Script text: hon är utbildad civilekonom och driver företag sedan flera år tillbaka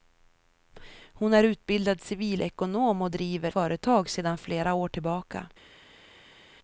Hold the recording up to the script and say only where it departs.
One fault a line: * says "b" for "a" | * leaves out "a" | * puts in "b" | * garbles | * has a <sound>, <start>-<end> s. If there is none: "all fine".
all fine